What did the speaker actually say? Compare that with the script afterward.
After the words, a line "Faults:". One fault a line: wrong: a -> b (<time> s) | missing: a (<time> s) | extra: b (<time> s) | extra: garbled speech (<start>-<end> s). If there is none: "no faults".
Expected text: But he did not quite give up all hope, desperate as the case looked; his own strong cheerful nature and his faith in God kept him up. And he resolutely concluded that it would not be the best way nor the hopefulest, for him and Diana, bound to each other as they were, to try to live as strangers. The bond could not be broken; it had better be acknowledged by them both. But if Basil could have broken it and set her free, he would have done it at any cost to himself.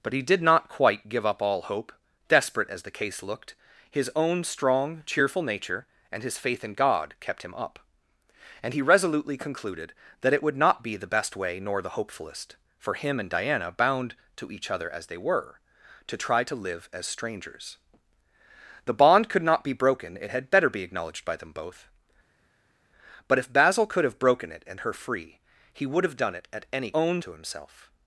But he did not quite give up all hope, desperate as the case looked; his own strong cheerful nature and his faith in God kept him up. And he resolutely concluded that it would not be the best way nor the hopefulest, for him and Diana, bound to each other as they were, to try to live as strangers. The bond could not be broken; it had better be acknowledged by them both. But if Basil could have broken it and her free, he would have done it at any own to himself.
Faults:
missing: set (24.8 s)
wrong: cost -> own (26.9 s)